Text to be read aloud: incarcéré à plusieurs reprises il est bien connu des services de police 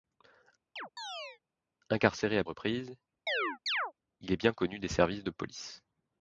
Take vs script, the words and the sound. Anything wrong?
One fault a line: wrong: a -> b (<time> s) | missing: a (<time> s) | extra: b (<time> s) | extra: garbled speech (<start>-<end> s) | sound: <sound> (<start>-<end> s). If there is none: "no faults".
sound: chirp (0.8-1.4 s)
missing: plusieurs (2.4 s)
sound: chirp (3.3-3.9 s)